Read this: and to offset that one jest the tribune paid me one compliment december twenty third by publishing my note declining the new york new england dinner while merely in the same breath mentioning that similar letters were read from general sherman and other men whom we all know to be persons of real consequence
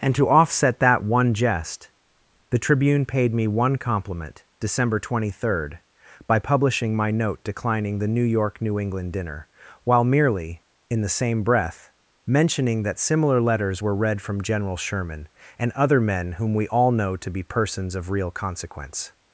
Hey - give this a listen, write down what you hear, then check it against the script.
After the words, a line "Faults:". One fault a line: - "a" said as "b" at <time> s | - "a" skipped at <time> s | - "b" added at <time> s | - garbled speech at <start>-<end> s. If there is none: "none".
and to offset that one jest the tribune paid me one compliment december twenty third by publishing my note declining the new york new england dinner while merely in the same breath mentioning that similar letters were read from general sherman and other men whom we all know to be persons of real consequence
Faults:
none